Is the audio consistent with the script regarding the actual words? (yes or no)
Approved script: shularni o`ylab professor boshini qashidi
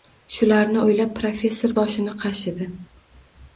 yes